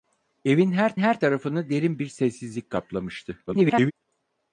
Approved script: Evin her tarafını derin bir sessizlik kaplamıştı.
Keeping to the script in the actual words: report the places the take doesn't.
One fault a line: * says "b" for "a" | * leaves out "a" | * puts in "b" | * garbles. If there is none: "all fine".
* puts in "her"
* garbles